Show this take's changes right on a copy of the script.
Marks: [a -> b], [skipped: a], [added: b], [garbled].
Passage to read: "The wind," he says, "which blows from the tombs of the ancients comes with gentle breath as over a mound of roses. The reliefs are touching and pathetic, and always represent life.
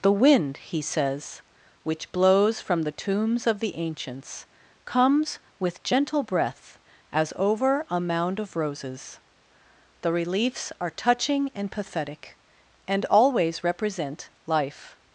"The wind," he says, "which blows from the tombs of the ancients comes with gentle breath as over a mound of roses. The reliefs are touching and pathetic, and always represent life.